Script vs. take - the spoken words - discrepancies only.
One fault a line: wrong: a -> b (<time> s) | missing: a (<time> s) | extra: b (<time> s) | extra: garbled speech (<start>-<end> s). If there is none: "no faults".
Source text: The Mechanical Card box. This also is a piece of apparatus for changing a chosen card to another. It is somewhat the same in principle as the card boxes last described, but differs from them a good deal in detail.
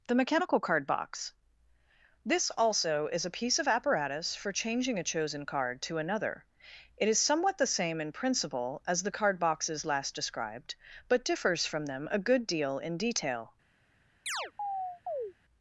no faults